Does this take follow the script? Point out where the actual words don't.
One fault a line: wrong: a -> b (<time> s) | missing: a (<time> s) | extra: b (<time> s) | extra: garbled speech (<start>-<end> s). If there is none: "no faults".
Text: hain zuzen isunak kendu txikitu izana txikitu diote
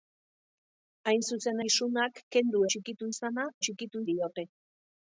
no faults